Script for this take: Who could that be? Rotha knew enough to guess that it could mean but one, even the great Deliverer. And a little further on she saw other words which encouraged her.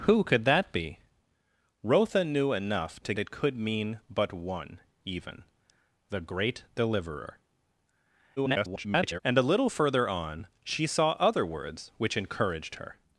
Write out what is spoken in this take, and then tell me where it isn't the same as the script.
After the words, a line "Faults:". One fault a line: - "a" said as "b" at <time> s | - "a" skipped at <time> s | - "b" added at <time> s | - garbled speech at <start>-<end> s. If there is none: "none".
Who could that be? Rotha knew enough to it could mean but one, even the great Deliverer. [garbled] And a little further on she saw other words which encouraged her.
Faults:
- "guess that" skipped at 3.1 s
- garbled speech at 8.4-9.2 s